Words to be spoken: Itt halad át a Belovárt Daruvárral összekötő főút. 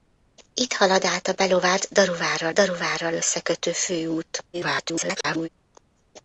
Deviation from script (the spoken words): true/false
true